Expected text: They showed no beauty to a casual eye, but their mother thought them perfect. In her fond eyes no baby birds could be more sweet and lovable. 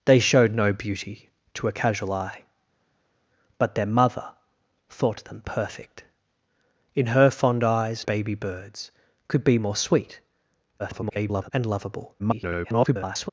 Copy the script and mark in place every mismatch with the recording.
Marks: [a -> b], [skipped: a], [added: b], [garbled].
They showed no beauty to a casual eye, but their mother thought them perfect. In her fond eyes [skipped: no] baby birds could be more sweet [garbled] and lovable. [garbled]